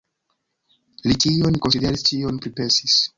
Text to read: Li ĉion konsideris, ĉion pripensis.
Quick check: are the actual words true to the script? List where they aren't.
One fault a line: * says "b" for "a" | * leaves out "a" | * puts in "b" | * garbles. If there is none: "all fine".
all fine